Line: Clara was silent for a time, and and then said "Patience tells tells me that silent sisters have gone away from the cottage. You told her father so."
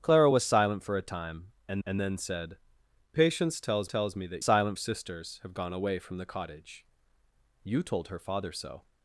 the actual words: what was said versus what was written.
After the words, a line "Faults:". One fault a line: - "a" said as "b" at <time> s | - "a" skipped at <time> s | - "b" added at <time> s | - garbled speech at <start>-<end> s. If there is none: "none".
Clara was silent for a time, and and then said "Patience tells tells me that silent sisters have gone away from the cottage. You told her father so."
Faults:
none